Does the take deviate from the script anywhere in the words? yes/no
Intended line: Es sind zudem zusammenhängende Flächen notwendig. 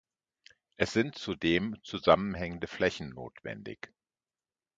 no